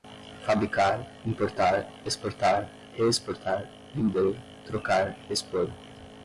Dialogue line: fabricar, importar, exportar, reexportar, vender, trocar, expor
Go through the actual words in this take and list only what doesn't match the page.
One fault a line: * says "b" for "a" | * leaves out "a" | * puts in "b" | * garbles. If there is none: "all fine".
all fine